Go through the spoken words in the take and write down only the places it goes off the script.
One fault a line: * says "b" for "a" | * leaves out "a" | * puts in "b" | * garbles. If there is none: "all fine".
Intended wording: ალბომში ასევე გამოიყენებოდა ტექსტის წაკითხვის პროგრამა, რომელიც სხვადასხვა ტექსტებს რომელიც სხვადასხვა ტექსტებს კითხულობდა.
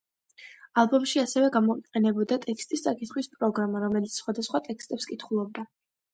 * leaves out "რომელიც სხვადასხვა ტექსტებს"